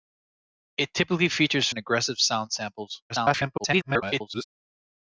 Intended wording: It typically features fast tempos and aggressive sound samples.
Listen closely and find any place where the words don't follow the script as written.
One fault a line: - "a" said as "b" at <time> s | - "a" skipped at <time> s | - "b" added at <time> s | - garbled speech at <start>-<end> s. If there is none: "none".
- "fast tempos" skipped at 1.7 s
- garbled speech at 3.1-4.4 s